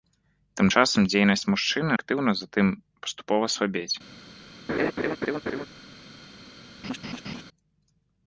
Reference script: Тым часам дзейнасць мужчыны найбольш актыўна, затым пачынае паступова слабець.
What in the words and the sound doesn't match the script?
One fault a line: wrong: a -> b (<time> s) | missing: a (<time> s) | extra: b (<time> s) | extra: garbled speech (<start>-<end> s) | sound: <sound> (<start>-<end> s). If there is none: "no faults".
missing: найбольш (1.9 s)
missing: пачынае (2.7 s)
sound: laugh (4.7-5.7 s)
sound: laugh (6.8-7.4 s)